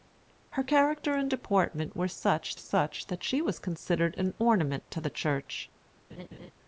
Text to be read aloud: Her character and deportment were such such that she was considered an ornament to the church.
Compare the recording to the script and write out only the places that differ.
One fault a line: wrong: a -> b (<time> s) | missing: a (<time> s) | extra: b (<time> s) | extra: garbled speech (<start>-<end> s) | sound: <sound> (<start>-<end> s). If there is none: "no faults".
sound: laugh (6.1-6.5 s)